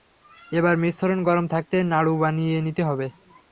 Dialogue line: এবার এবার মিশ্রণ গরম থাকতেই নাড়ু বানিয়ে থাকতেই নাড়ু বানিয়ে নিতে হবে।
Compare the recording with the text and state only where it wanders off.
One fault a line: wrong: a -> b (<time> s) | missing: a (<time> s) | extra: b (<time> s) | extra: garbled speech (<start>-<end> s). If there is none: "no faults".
missing: এবার (0.8 s)
missing: থাকতেই নাড়ু বানিয়ে (2.6 s)